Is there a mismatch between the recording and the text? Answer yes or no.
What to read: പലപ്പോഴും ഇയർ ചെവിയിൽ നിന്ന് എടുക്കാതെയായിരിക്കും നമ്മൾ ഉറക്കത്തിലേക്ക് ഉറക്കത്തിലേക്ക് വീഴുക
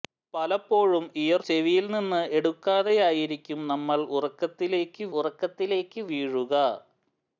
no